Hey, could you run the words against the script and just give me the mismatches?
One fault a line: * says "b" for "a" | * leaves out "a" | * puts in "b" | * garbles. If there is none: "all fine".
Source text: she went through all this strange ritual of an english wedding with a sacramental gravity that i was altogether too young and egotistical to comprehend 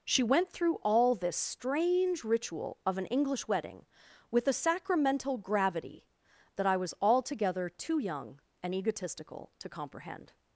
all fine